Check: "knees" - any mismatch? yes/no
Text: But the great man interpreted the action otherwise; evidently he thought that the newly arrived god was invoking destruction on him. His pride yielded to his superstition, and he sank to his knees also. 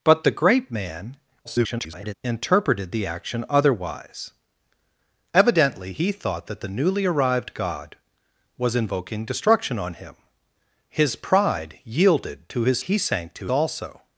yes